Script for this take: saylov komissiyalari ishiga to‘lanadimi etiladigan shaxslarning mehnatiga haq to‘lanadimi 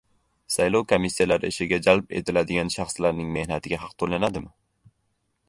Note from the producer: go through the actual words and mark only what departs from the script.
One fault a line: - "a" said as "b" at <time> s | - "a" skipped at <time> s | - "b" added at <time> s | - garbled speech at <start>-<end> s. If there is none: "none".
- "to‘lanadimi" said as "jalb" at 1.9 s